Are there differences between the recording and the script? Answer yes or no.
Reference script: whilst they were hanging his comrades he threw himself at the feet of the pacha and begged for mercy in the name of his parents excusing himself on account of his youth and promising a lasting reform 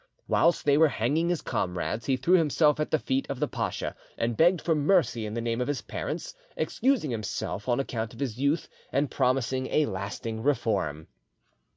no